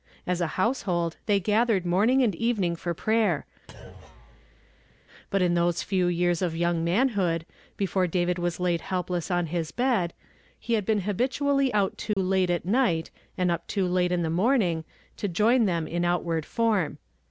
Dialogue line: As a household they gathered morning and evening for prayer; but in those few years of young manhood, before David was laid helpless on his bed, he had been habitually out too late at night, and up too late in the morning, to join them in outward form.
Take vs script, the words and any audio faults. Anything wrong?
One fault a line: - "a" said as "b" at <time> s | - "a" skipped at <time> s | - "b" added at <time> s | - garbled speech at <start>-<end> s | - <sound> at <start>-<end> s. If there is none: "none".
- thud at 3.7-5.0 s
- dropout at 12.1-12.2 s